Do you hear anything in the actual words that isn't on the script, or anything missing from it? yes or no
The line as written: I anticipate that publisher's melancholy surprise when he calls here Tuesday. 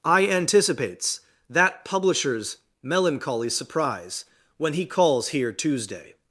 yes